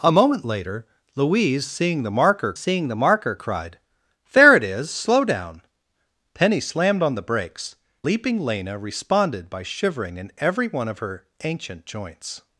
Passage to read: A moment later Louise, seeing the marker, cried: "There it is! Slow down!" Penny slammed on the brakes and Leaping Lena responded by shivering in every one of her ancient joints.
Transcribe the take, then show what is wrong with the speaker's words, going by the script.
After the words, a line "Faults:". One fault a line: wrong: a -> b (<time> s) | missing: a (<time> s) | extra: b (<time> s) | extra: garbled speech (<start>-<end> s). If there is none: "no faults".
A moment later Louise, seeing the marker seeing the marker, cried: "There it is! Slow down!" Penny slammed on the brakes Leaping Lena responded by shivering in every one of her ancient joints.
Faults:
extra: seeing the marker (2.5 s)
missing: and (7.8 s)